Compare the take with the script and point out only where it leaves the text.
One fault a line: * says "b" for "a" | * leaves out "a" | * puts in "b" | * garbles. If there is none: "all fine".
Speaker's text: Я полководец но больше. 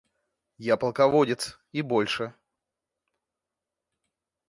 * says "и" for "но"